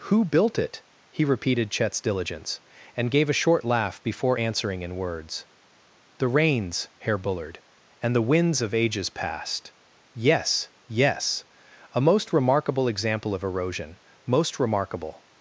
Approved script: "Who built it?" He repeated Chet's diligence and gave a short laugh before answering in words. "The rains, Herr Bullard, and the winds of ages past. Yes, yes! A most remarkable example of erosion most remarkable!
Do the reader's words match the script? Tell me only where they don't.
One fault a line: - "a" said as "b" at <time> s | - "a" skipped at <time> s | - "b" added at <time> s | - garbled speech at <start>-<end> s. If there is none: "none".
none